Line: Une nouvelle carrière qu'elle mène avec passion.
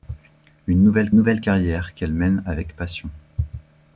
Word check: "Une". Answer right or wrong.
right